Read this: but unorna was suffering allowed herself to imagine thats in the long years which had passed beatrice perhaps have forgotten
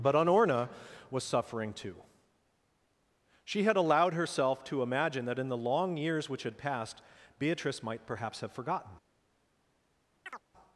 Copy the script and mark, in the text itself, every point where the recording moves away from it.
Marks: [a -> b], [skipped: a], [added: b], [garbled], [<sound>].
but unorna was suffering [added: too she had] allowed herself to imagine [thats -> that] in the long years which had passed beatrice [added: might] perhaps have forgotten [chirp]